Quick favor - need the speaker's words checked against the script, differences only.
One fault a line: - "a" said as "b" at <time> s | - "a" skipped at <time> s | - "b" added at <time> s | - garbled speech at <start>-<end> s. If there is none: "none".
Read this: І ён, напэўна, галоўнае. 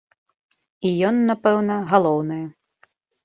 none